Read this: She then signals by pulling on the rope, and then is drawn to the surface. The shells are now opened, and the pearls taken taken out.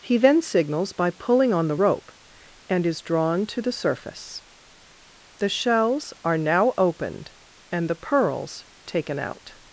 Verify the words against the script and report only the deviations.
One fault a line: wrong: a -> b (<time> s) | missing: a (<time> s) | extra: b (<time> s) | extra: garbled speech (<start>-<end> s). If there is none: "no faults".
wrong: She -> He (0.0 s)
missing: then (2.9 s)
missing: taken (9.2 s)